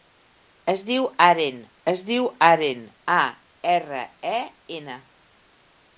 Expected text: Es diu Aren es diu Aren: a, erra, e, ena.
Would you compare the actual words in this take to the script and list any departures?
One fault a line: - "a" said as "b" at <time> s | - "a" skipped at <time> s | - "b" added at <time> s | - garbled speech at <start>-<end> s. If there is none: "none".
none